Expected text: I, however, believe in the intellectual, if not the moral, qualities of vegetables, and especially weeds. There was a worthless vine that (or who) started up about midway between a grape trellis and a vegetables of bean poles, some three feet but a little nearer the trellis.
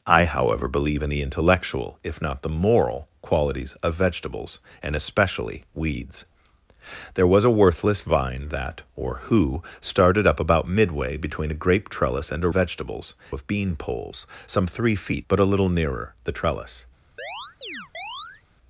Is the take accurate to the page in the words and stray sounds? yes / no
no